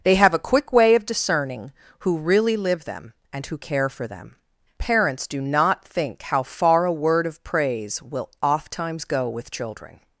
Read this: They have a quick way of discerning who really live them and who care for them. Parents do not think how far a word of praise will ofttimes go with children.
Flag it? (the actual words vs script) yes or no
no